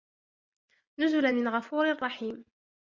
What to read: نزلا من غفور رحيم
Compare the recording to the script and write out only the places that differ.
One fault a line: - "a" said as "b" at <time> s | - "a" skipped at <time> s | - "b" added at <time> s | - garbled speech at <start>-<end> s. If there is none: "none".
none